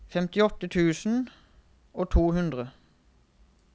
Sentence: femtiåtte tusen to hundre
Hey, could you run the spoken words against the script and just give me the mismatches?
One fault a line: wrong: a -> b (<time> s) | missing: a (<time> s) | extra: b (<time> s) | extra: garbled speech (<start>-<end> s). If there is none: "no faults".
extra: og (1.9 s)